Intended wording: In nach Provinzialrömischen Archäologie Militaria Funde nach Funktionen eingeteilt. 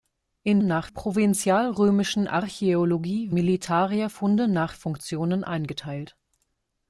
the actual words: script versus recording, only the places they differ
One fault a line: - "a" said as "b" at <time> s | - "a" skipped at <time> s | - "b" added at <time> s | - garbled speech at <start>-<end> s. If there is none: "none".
none